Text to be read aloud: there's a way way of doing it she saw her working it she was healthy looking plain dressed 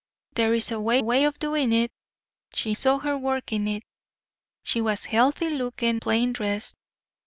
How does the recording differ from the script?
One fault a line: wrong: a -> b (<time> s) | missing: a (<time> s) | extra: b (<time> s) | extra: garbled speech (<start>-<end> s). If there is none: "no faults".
no faults